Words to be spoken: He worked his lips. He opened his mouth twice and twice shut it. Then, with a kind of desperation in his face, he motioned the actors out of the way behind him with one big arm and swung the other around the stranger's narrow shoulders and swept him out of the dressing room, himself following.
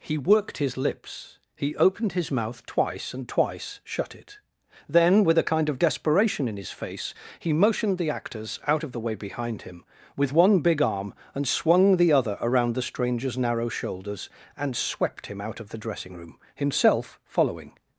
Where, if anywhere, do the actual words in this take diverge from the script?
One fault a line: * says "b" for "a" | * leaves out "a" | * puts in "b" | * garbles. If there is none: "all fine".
all fine